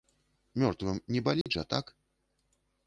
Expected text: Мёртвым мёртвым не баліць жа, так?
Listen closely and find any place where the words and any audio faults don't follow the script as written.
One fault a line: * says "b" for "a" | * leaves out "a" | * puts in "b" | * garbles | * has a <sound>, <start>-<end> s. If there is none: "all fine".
* leaves out "мёртвым"
* has a dropout, 1.4-1.5 s